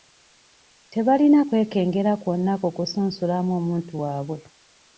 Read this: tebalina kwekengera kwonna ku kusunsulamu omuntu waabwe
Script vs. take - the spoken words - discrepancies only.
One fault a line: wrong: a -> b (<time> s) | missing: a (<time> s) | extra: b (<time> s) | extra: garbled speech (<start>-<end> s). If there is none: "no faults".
no faults